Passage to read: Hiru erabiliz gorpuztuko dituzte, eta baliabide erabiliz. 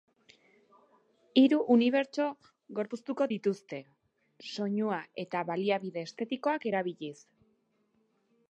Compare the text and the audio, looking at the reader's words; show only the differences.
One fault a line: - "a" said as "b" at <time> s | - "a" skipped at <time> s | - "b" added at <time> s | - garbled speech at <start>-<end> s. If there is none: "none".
- "erabiliz" said as "unibertso" at 1.8 s
- "soinua" added at 4.5 s
- "estetikoak" added at 6.1 s